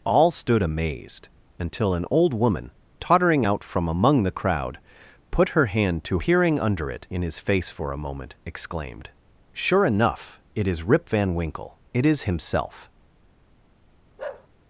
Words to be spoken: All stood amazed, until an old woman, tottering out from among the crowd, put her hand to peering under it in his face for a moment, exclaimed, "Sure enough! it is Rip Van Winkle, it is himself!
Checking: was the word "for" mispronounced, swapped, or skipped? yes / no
no